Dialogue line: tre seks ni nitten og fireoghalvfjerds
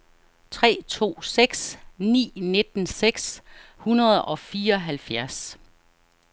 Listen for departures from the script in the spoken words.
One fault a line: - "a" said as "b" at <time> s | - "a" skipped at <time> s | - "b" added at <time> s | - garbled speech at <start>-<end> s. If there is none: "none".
- "to" added at 0.9 s
- "seks hundrede" added at 2.9 s